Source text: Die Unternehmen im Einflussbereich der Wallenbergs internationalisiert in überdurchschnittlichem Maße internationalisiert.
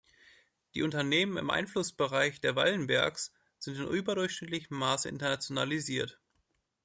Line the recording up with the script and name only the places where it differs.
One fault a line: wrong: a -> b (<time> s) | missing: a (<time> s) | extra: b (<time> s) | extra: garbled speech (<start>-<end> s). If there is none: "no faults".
wrong: internationalisiert -> sind (3.6 s)